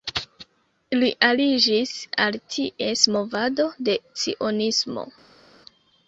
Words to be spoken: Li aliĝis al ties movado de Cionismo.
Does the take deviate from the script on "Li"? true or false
false